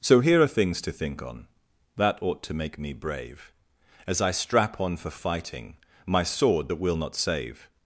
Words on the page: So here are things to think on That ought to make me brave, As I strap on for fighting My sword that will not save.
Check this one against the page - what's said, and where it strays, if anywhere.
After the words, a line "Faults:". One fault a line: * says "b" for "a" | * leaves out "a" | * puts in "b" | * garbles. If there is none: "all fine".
So here are things to think on That ought to make me brave, As I strap on for fighting My sword that will not save.
Faults:
all fine